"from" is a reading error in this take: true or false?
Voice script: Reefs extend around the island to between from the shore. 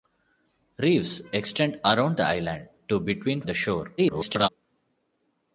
true